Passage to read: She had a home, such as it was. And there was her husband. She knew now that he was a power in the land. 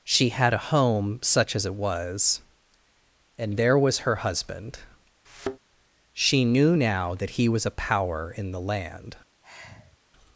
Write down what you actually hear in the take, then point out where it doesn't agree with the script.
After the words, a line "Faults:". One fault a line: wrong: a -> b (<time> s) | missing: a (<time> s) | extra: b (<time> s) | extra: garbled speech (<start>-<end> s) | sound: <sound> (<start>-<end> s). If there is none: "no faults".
She had a home, such as it was. And there was her husband. She knew now that he was a power in the land.
Faults:
sound: thud (5.3-5.6 s)
sound: sigh (9.4-10.0 s)